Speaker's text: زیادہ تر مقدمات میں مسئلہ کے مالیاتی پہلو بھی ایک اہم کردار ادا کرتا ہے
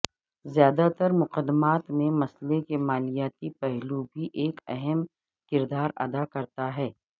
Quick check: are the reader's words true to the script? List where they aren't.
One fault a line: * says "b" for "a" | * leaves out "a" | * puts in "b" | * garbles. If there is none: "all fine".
all fine